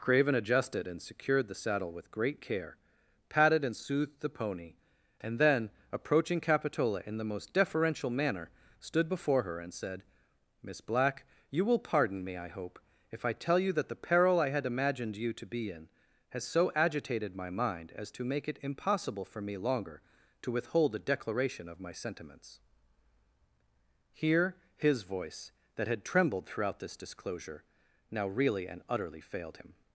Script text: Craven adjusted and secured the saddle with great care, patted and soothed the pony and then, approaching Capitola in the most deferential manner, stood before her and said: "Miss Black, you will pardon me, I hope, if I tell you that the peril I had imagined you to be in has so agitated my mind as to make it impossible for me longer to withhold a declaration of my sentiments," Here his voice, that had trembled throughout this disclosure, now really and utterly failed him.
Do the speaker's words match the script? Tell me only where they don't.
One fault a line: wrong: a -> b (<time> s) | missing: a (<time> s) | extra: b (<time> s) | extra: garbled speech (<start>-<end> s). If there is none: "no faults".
no faults